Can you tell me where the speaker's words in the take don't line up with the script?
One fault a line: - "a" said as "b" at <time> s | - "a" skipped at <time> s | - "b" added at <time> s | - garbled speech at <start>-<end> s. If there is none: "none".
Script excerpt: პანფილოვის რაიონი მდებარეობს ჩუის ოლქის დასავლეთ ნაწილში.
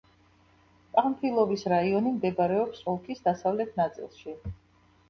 - "ჩუის" skipped at 2.8 s